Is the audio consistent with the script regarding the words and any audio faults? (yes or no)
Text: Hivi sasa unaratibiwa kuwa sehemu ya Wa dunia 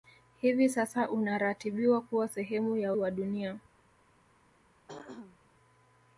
no